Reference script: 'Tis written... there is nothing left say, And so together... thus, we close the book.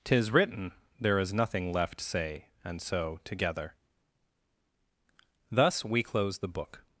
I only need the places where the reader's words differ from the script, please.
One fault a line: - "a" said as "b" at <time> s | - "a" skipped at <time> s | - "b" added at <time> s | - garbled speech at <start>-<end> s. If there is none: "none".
none